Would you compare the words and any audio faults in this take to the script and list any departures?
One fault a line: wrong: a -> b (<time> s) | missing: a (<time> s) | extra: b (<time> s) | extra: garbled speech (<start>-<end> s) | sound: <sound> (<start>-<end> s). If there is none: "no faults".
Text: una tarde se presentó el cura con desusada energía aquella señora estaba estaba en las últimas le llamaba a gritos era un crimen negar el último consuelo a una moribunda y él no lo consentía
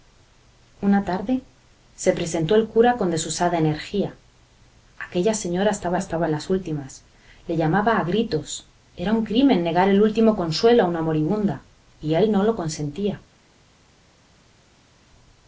no faults